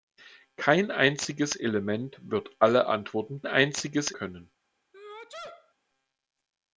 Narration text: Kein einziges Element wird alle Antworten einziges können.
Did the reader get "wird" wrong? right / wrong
right